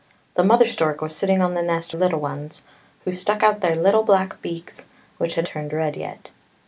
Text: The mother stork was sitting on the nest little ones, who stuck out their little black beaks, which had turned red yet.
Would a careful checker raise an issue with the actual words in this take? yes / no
no